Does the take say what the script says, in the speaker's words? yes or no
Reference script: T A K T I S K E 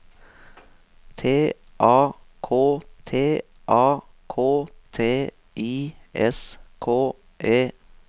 no